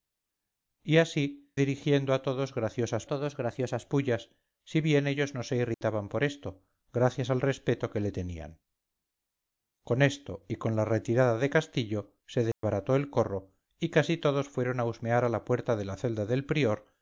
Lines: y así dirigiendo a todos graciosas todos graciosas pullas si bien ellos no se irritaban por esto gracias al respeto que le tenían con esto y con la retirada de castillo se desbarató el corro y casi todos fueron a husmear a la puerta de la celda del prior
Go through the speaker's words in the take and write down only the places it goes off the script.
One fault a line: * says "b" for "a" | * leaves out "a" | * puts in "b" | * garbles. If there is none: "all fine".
all fine